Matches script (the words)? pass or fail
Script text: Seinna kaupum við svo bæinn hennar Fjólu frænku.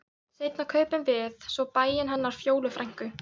pass